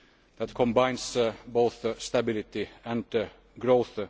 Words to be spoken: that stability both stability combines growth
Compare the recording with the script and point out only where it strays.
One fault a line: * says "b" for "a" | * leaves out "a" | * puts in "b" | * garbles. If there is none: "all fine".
* says "combines" for "stability"
* says "and" for "combines"